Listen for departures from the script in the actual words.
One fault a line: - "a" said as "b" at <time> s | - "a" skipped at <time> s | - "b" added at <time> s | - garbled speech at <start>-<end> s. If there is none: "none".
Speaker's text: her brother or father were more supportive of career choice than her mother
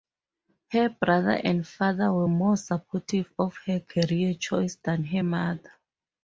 - "or" said as "and" at 1.4 s
- "her" added at 3.7 s